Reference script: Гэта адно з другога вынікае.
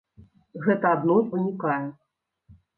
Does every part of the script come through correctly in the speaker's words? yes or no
no